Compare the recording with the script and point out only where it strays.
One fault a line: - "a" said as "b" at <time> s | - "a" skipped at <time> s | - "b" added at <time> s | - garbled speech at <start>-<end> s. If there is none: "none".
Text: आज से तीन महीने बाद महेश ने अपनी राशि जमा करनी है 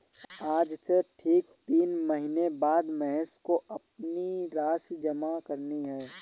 - "ठीक" added at 1.0 s
- "ने" said as "को" at 3.4 s